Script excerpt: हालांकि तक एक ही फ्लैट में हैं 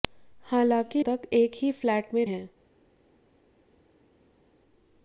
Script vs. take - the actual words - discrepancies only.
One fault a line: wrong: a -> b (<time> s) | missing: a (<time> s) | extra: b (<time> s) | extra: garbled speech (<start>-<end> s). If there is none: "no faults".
no faults